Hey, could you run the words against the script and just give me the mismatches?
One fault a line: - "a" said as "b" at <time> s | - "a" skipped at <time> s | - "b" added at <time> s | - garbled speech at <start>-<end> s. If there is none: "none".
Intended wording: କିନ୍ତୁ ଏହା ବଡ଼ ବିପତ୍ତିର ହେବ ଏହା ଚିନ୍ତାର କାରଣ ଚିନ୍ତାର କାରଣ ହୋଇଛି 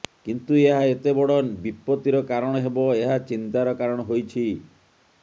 - "ଏତେ" added at 0.8 s
- "କାରଣ" added at 2.3 s
- "ଚିନ୍ତାର କାରଣ" skipped at 4.1 s